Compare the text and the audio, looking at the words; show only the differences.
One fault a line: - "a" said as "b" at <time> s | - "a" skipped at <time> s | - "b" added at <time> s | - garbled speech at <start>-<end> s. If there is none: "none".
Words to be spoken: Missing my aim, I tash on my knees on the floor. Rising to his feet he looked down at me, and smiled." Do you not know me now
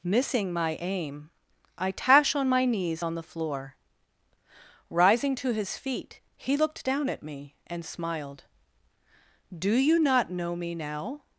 none